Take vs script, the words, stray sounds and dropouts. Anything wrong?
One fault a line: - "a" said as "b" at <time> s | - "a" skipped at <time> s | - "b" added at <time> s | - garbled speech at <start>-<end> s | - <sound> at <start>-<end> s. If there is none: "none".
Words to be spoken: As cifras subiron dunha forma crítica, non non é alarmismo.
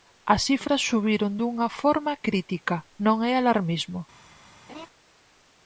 - "non" skipped at 3.2 s
- laugh at 4.7-4.9 s